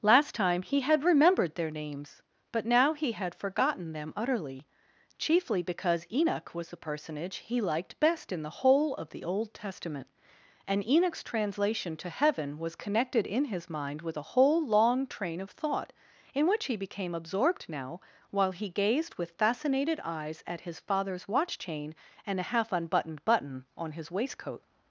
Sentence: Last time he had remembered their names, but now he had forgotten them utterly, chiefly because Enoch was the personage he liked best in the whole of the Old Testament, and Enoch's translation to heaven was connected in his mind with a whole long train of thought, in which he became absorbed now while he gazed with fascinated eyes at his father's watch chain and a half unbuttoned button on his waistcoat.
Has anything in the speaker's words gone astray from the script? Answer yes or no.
no